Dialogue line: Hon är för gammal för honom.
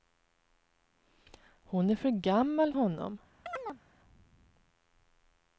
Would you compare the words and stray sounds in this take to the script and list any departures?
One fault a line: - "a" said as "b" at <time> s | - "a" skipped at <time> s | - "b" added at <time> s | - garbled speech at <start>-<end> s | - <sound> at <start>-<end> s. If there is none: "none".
- "för" skipped at 2.7 s
- chirp at 3.5-3.8 s